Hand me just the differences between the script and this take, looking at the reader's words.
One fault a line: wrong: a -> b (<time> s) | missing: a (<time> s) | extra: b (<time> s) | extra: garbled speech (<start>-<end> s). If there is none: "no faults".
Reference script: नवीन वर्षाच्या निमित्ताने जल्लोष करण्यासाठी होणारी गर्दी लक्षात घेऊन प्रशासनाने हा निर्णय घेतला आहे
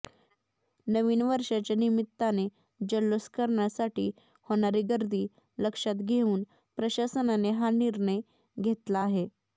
no faults